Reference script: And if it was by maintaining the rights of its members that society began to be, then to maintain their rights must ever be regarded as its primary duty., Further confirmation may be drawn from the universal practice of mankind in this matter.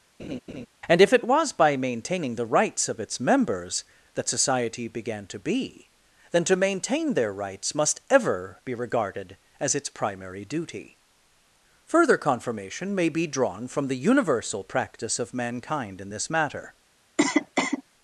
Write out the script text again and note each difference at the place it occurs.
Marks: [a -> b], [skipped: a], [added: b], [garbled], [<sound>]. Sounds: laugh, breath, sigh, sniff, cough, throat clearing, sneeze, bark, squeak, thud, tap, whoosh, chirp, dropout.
[laugh] And if it was by maintaining the rights of its members that society began to be, then to maintain their rights must ever be regarded as its primary duty., Further confirmation may be drawn from the universal practice of mankind in this matter. [cough]